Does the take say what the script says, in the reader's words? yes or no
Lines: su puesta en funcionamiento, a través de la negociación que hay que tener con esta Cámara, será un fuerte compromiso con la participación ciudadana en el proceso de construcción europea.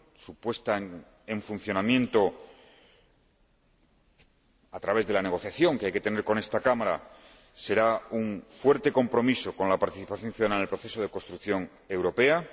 yes